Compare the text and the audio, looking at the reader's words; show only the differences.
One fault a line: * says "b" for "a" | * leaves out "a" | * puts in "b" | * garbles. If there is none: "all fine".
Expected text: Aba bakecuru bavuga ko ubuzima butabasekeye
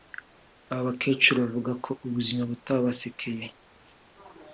all fine